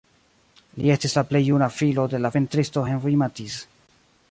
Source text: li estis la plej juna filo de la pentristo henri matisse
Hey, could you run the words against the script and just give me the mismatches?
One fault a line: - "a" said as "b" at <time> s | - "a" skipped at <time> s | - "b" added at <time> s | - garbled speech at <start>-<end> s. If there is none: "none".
none